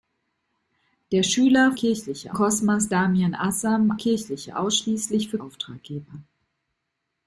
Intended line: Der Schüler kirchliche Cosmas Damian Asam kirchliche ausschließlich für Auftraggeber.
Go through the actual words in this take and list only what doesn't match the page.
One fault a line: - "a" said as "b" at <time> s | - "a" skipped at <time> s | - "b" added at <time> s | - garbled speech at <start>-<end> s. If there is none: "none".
none